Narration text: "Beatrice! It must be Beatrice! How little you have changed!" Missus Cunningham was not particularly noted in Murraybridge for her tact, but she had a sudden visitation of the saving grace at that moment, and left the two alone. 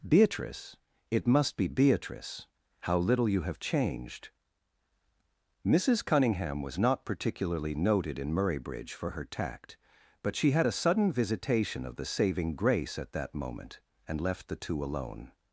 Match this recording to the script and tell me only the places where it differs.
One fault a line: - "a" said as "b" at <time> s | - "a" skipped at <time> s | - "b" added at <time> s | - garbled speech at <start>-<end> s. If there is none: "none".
none